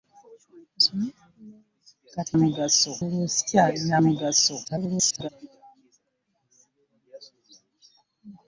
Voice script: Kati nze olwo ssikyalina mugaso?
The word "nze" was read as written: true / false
false